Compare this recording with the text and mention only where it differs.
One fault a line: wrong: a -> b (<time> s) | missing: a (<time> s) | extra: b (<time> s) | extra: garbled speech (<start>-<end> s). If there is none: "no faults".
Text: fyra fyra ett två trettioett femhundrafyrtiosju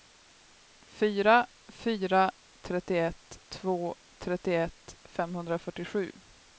wrong: ett -> trettioett (2.6 s)